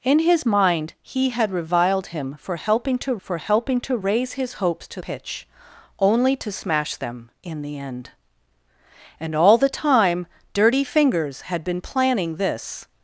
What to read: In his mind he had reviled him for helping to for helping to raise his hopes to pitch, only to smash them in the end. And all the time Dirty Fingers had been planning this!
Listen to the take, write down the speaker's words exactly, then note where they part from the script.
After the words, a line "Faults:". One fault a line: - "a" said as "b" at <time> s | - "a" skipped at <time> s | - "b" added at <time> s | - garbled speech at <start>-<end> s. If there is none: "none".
In his mind he had reviled him for helping to for helping to raise his hopes to pitch, only to smash them in the end. And all the time Dirty Fingers had been planning this!
Faults:
none